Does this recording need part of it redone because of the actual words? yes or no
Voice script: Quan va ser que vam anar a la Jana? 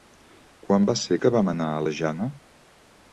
no